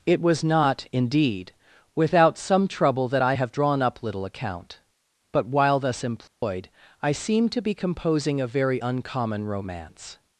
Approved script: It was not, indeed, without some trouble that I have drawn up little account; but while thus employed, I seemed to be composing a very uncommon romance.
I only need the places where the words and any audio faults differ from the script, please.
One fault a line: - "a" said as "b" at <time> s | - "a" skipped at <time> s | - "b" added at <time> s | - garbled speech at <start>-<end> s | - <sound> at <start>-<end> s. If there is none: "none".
- dropout at 6.3-6.4 s